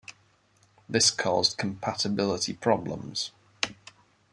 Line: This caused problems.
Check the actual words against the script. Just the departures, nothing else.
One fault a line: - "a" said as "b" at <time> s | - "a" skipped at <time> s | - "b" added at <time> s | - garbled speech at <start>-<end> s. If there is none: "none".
- "compatibility" added at 1.6 s